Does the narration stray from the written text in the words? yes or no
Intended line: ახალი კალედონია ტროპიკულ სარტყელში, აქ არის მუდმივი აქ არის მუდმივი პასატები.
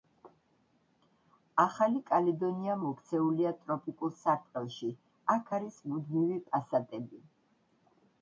yes